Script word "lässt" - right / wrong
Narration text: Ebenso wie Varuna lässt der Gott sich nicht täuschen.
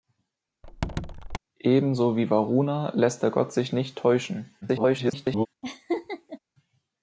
right